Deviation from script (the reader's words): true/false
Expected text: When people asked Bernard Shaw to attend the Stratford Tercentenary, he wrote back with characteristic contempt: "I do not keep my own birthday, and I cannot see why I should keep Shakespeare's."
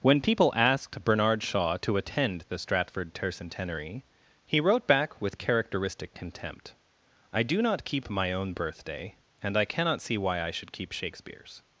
false